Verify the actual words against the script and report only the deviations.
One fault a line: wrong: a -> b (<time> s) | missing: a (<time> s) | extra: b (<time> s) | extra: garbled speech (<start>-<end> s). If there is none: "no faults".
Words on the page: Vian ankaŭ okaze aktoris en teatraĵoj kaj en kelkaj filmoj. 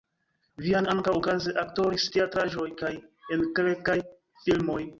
missing: en (2.1 s)